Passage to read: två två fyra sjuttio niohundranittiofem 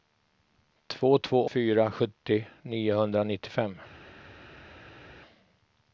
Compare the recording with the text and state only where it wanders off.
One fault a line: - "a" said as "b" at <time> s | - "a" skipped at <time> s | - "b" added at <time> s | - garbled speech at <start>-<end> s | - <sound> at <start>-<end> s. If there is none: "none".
none